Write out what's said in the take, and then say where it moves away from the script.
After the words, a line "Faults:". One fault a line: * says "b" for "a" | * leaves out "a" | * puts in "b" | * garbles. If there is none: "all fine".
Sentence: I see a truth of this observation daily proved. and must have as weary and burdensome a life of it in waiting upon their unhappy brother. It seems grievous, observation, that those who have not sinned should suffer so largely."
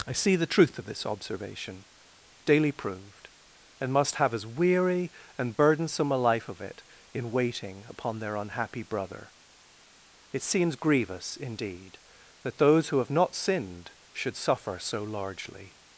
I see the truth of this observation daily proved. and must have as weary and burdensome a life of it in waiting upon their unhappy brother. It seems grievous, indeed, that those who have not sinned should suffer so largely."
Faults:
* says "the" for "a"
* says "indeed" for "observation"